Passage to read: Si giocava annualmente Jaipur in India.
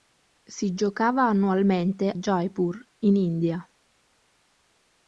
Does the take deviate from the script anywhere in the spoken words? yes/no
no